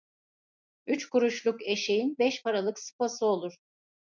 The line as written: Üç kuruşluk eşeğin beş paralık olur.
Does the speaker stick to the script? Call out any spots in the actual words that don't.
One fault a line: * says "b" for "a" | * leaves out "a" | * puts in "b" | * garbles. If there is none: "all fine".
* puts in "sıpası"